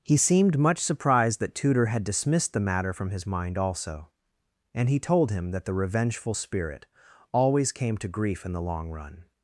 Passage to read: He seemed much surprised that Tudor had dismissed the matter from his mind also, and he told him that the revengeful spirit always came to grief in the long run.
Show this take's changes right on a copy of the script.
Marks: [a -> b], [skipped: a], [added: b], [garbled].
He seemed much surprised that Tudor had dismissed the matter from his mind also, and he told him that the revengeful spirit always came to grief in the long run.